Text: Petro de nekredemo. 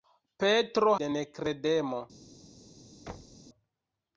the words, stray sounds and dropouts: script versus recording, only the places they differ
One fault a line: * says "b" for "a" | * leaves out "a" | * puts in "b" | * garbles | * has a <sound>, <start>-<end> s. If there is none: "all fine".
* has a thud, 3.1-3.4 s